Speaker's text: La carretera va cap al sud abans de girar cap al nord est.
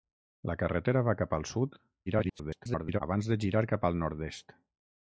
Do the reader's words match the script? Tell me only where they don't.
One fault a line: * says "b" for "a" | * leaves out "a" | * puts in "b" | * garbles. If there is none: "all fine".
* garbles